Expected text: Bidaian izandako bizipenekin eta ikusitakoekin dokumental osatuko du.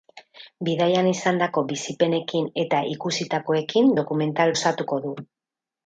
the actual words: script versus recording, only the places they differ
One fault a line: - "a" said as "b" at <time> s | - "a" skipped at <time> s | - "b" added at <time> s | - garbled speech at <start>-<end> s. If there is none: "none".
none